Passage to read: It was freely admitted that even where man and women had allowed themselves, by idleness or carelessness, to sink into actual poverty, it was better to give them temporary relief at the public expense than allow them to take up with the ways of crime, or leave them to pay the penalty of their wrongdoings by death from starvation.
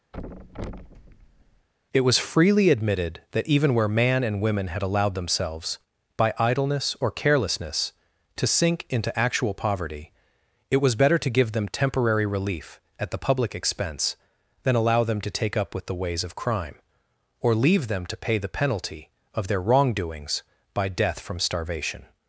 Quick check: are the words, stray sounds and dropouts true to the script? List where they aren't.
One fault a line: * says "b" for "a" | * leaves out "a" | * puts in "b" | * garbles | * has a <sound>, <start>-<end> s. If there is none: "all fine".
* has a thud, 0.1-1.7 s